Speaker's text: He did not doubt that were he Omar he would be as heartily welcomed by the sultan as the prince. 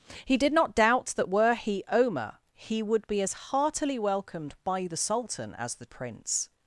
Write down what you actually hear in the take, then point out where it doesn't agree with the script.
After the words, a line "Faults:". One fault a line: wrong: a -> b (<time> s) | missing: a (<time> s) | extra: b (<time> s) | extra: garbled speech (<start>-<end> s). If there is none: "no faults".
He did not doubt that were he Omar he would be as heartily welcomed by the sultan as the prince.
Faults:
no faults